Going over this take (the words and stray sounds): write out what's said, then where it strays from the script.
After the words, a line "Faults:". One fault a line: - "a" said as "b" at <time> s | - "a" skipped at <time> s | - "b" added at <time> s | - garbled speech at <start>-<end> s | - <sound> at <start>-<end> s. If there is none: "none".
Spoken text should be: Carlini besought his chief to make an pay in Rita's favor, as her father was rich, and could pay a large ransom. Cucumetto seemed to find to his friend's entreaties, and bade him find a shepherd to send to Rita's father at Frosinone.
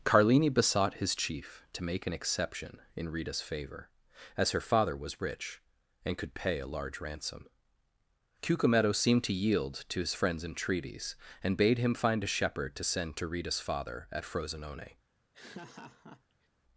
Carlini besought his chief to make an exception in Rita's favor, as her father was rich, and could pay a large ransom. Cucumetto seemed to yield to his friend's entreaties, and bade him find a shepherd to send to Rita's father at Frosinone.
Faults:
- "pay" said as "exception" at 2.1 s
- "find" said as "yield" at 9.3 s
- laugh at 15.3-16.5 s